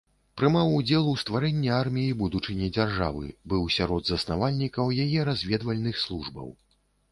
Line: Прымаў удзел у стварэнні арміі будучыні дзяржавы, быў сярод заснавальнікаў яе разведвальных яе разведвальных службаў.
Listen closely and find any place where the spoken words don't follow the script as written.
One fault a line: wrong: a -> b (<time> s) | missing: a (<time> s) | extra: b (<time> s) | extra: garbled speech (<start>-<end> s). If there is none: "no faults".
missing: яе разведвальных (6.0 s)